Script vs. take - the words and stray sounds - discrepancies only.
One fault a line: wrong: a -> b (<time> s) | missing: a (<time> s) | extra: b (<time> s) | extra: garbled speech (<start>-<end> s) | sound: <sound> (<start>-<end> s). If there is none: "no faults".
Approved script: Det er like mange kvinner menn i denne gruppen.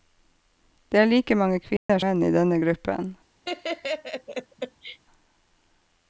sound: dropout (1.8-1.9 s)
sound: laugh (3.4-5.0 s)